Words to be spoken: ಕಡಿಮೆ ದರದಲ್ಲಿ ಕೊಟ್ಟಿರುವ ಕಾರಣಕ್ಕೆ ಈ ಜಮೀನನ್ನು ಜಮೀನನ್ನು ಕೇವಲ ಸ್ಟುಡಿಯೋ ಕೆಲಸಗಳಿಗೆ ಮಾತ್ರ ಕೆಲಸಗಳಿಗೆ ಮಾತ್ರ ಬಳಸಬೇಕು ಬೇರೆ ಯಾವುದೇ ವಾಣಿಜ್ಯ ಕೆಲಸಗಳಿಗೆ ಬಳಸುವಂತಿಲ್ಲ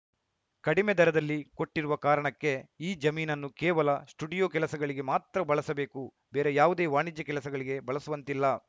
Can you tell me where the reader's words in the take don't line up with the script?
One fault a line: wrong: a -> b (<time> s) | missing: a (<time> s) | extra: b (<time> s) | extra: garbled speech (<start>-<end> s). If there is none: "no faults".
missing: ಜಮೀನನ್ನು (3.5 s)
missing: ಕೆಲಸಗಳಿಗೆ ಮಾತ್ರ (5.4 s)